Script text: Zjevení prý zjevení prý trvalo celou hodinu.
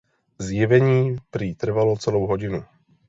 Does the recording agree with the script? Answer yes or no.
no